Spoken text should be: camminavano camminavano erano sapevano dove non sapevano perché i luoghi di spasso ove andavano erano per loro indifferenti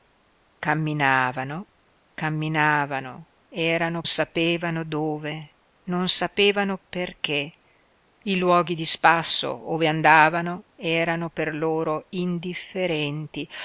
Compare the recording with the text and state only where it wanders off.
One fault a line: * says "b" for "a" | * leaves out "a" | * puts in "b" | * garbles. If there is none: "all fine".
all fine